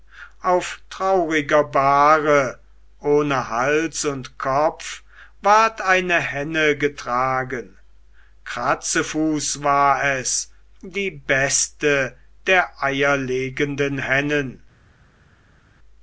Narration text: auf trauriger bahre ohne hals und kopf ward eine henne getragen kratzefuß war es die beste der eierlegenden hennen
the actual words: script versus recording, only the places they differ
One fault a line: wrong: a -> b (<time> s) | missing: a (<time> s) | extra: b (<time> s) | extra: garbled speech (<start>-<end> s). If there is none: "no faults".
no faults